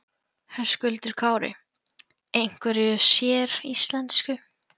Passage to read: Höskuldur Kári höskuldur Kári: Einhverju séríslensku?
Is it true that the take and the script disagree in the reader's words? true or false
true